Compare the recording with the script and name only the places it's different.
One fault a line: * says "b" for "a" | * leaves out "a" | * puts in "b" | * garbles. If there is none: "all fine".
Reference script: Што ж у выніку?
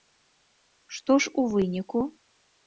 all fine